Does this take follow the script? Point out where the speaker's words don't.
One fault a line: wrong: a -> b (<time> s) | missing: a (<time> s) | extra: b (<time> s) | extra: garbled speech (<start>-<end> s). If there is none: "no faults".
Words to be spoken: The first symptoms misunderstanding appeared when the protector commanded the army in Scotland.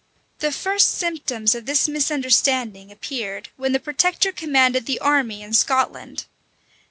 extra: of this (1.5 s)